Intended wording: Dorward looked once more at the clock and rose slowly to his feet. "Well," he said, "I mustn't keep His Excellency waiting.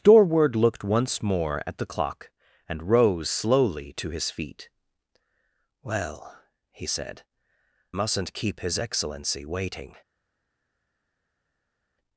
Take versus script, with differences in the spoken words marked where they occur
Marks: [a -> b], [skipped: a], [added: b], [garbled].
Dorward looked once more at the clock and rose slowly to his feet. "Well," he said, [skipped: "I] mustn't keep His Excellency waiting.